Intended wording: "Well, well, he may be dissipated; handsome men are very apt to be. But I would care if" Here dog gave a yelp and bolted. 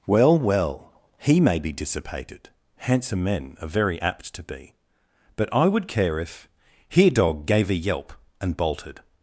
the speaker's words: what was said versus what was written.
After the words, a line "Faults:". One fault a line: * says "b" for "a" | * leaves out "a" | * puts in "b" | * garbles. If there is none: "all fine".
"Well, well, he may be dissipated; handsome men are very apt to be. But I would care if" Here dog gave a yelp and bolted.
Faults:
all fine